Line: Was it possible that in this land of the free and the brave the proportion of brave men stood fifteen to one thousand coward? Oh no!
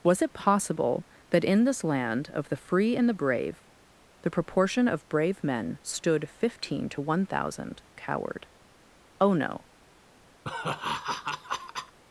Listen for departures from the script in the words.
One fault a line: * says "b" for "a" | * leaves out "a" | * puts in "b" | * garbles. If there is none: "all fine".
all fine